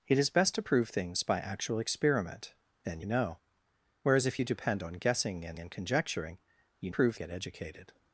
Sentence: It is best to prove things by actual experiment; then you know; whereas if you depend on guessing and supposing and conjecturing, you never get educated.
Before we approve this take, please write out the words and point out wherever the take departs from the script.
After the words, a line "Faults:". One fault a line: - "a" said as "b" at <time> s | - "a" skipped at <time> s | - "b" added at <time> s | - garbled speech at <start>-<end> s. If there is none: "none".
It is best to prove things by actual experiment; then know; whereas if you depend on guessing and and conjecturing, you prove get educated.
Faults:
- "you" skipped at 3.0 s
- "supposing" skipped at 5.6 s
- "never" said as "prove" at 6.9 s